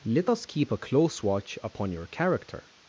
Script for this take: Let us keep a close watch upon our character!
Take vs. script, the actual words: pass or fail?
fail